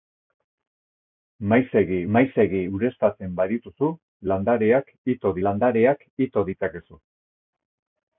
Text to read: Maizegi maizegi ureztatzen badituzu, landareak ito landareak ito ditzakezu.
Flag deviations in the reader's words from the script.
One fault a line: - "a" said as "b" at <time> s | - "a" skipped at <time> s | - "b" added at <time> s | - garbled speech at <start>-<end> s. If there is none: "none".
none